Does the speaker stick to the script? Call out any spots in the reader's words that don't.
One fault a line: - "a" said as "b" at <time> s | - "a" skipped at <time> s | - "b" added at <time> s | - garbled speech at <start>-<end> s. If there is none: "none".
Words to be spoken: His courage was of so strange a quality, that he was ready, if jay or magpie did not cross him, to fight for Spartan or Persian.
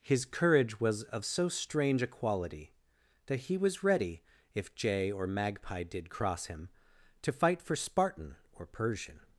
- "not" skipped at 6.1 s